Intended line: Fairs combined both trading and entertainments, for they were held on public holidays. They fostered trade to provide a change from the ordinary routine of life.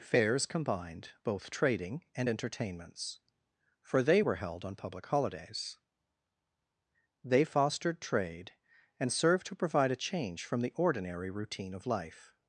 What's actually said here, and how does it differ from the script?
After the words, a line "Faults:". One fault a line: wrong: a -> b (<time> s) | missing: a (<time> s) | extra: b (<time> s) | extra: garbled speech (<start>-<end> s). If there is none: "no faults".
Fairs combined both trading and entertainments, for they were held on public holidays. They fostered trade and served to provide a change from the ordinary routine of life.
Faults:
extra: and served (9.0 s)